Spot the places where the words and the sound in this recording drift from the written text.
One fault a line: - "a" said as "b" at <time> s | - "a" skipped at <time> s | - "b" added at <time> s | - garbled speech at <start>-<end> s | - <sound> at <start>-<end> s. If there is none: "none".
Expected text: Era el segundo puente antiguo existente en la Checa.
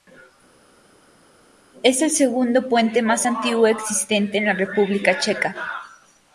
- "Era" said as "Es" at 1.8 s
- "más" added at 3.0 s
- "República" added at 4.5 s